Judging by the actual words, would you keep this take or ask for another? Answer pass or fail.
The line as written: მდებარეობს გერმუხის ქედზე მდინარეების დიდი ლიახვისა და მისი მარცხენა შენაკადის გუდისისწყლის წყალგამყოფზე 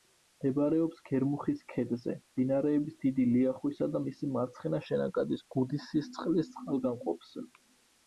pass